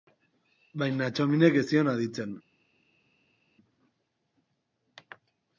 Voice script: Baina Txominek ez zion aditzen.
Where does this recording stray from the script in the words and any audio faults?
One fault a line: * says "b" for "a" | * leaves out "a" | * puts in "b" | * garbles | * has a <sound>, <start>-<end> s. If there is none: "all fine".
all fine